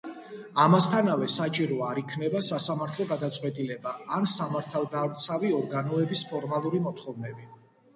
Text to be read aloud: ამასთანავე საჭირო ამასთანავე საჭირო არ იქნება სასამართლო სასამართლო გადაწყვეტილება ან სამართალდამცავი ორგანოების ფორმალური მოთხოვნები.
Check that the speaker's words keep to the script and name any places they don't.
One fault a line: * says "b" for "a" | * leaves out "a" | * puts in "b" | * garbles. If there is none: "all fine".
* leaves out "ამასთანავე საჭირო"
* leaves out "სასამართლო"